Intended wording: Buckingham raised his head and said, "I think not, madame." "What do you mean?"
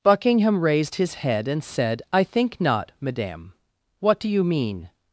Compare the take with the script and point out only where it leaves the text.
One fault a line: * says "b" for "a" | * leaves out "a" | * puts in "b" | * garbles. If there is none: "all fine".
all fine